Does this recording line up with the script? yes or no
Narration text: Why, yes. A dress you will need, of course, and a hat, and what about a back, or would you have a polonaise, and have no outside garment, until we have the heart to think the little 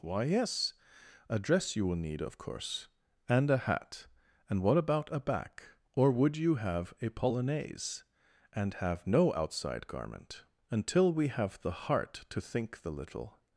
yes